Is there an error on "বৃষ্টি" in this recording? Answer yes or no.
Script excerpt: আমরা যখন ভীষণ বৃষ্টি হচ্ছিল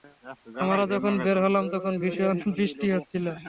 no